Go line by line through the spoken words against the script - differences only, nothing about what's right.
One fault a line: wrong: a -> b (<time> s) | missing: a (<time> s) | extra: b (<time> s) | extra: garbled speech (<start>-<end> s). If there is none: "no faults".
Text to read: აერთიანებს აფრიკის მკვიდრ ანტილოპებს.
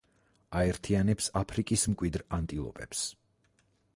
no faults